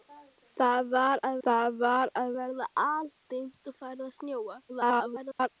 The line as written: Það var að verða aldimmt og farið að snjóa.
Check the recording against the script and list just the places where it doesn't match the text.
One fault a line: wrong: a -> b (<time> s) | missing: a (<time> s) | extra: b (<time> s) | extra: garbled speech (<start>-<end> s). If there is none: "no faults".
extra: það var að (1.5 s)
extra: garbled speech (4.7-5.5 s)